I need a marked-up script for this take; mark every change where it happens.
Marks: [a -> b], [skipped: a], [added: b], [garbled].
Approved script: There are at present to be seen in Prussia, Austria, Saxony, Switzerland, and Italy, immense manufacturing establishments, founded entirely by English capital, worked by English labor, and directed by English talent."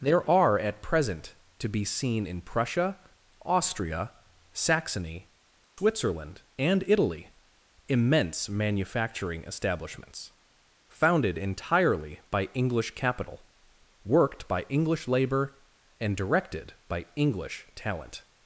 There are at present to be seen in Prussia, Austria, Saxony, Switzerland, and Italy, immense manufacturing establishments, founded entirely by English capital, worked by English labor, and directed by English talent."